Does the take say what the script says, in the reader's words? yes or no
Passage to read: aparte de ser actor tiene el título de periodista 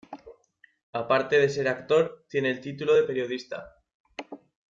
yes